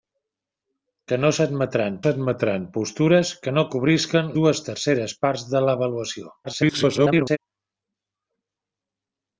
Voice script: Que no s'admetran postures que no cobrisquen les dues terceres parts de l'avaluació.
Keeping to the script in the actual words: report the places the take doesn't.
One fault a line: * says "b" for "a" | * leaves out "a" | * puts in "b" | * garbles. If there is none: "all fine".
* puts in "s'admetran"
* leaves out "les"
* garbles